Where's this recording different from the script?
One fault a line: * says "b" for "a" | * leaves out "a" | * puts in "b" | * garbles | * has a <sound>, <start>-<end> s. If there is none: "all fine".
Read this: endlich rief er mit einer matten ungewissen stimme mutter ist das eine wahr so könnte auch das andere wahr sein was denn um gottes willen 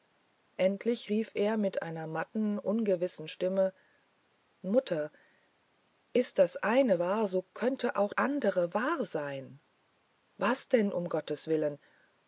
* leaves out "das"